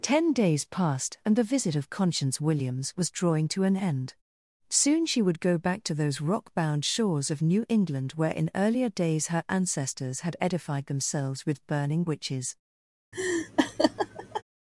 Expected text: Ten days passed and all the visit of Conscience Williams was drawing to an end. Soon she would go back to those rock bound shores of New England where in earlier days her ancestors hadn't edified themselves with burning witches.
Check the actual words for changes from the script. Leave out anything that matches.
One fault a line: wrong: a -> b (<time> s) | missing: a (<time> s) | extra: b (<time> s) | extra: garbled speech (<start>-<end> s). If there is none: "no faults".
missing: all (1.4 s)
wrong: hadn't -> had (10.2 s)